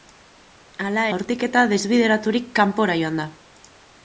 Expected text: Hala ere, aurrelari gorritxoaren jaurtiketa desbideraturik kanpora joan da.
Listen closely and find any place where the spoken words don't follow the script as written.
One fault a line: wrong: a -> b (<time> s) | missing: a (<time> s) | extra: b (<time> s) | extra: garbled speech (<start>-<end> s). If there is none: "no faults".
missing: ere aurrelari gorritxoaren (1.0 s)